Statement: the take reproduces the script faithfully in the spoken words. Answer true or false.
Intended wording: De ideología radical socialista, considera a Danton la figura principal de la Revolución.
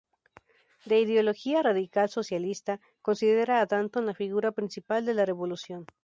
true